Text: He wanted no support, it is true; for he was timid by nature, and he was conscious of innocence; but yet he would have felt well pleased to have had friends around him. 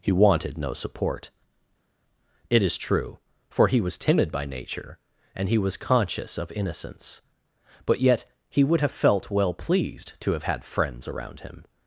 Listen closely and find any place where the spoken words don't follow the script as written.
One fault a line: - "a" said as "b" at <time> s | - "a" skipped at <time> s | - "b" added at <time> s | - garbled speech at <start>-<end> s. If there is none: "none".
none